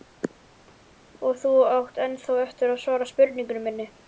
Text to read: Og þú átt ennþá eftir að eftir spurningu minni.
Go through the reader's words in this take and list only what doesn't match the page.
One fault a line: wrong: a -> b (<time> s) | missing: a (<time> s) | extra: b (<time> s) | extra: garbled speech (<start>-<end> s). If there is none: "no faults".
wrong: eftir -> svara (2.9 s)